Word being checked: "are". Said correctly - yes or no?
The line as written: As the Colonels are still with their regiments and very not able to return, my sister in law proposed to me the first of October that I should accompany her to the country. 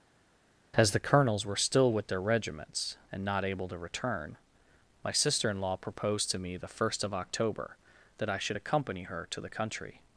no